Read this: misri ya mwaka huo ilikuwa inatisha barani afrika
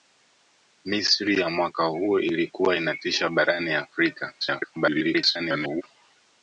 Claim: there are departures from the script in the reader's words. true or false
true